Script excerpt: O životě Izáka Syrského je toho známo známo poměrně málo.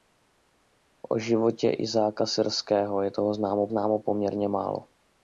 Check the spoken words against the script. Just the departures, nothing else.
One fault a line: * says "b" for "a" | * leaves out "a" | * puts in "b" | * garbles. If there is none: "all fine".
all fine